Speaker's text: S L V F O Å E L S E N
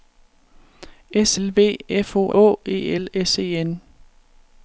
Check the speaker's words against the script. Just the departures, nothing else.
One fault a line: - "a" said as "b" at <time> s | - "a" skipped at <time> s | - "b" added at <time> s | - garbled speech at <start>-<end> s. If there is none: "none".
none